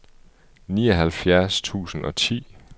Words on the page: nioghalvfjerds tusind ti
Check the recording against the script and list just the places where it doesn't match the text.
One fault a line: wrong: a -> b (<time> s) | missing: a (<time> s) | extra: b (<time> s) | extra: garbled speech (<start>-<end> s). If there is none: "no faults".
extra: og (2.0 s)